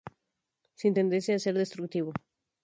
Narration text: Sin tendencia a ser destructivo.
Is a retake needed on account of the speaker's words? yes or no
no